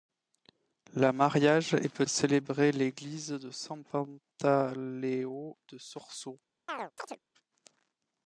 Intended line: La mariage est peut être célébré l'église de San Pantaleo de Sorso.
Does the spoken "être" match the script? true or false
false